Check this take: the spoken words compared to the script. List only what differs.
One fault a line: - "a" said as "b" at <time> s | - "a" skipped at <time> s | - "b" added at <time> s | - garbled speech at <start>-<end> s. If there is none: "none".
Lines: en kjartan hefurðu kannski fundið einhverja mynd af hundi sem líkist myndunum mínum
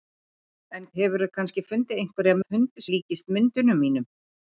- "kjartan" skipped at 0.8 s
- "mynd" skipped at 2.4 s
- "sem" skipped at 2.9 s